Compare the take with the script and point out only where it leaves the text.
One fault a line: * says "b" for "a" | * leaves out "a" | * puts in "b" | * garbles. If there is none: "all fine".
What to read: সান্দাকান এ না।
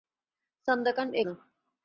all fine